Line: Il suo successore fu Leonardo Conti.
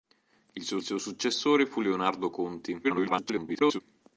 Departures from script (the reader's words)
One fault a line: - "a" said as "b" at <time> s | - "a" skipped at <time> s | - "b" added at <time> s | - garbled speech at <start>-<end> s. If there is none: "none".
- "suo" added at 0.8 s
- garbled speech at 2.8-3.8 s